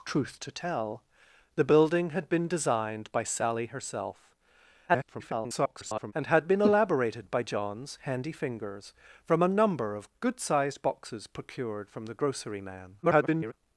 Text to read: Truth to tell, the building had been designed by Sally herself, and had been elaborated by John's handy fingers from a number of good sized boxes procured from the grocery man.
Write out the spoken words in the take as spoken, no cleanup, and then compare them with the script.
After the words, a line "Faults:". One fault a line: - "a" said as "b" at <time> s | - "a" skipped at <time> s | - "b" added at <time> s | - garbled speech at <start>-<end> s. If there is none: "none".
Truth to tell, the building had been designed by Sally herself, [garbled] and had been elaborated by John's handy fingers from a number of good sized boxes procured from the grocery man. [garbled]
Faults:
- garbled speech at 4.9-6.1 s
- garbled speech at 13.0-13.5 s